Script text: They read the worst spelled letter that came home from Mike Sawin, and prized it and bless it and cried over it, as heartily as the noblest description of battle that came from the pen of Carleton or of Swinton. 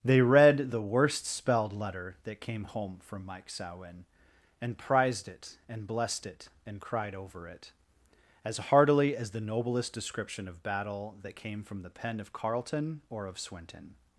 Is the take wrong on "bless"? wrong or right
wrong